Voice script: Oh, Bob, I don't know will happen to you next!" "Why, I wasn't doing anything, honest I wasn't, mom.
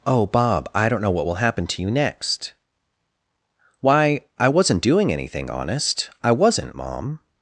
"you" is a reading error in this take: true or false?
false